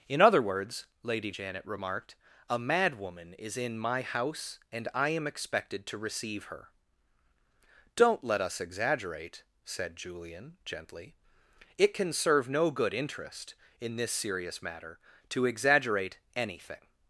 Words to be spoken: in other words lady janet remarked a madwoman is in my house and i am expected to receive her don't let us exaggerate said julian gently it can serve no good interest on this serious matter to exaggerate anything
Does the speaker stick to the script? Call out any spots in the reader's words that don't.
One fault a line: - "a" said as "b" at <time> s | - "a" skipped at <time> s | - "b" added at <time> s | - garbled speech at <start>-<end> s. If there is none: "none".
- "on" said as "in" at 13.8 s